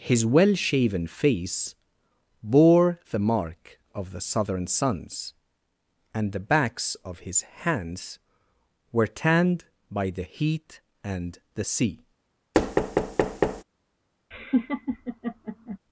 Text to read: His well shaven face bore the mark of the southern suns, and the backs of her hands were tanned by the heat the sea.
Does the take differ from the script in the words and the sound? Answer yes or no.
yes